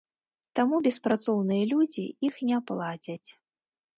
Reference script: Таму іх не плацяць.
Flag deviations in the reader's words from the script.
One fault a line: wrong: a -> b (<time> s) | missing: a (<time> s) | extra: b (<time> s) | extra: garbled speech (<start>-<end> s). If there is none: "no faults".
extra: беспрацоўныя людзі (0.9 s)